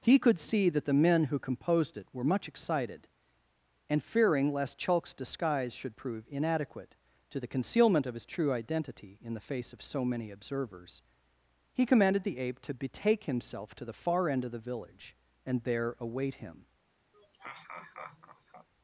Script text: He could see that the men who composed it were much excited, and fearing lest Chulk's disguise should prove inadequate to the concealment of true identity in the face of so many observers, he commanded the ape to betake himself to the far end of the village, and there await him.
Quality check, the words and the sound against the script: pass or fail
fail